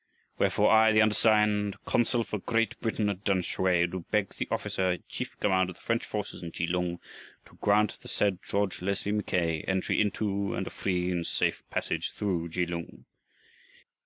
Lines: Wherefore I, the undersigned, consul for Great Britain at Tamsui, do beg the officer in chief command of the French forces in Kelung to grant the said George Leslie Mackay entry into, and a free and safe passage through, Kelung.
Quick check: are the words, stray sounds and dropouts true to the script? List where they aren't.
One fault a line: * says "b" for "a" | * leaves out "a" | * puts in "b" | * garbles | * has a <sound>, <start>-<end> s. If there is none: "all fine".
all fine